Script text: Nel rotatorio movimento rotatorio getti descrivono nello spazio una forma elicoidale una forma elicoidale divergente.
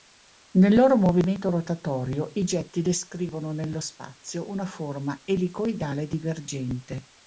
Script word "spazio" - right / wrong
right